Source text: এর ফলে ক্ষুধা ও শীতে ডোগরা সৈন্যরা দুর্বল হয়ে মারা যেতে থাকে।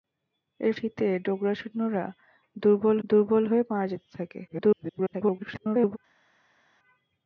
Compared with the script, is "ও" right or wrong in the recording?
wrong